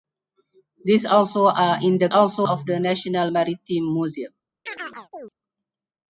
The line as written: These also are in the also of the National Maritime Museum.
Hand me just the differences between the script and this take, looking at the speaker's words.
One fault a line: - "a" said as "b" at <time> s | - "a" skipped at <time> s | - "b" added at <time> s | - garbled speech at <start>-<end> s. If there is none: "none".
none